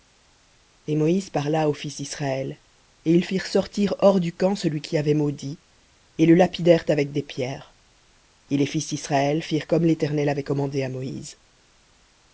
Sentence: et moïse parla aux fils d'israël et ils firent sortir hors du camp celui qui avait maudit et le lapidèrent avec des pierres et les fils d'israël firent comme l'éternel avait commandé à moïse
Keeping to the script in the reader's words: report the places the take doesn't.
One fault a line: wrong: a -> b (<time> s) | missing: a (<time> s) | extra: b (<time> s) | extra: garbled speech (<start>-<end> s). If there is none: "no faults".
no faults